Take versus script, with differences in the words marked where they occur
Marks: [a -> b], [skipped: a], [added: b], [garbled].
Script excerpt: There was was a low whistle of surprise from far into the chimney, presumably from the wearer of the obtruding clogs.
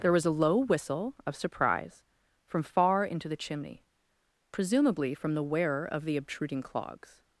There was [skipped: was] a low whistle of surprise from far into the chimney, presumably from the wearer of the obtruding clogs.